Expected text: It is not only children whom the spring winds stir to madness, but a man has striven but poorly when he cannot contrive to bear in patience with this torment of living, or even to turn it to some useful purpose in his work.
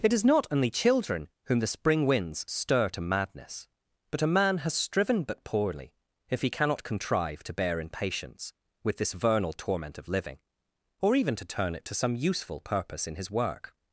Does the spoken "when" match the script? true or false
false